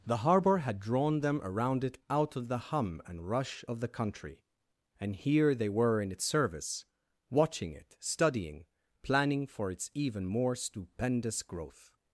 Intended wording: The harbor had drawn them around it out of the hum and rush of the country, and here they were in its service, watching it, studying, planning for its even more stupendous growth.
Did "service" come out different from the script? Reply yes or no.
no